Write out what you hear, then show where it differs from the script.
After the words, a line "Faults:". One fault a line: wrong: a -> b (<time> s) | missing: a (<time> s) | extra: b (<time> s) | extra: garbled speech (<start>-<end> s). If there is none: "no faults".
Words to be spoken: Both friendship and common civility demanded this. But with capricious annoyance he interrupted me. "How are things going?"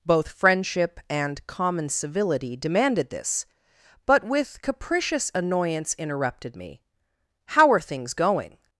Both friendship and common civility demanded this. But with capricious annoyance interrupted me. "How are things going?"
Faults:
missing: he (5.9 s)